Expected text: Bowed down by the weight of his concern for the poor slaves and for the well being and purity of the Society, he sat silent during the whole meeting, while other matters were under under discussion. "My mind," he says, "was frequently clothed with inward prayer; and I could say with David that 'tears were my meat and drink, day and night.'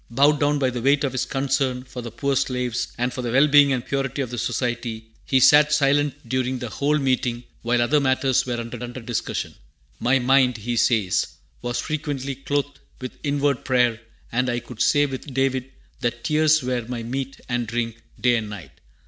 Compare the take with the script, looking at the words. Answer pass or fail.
pass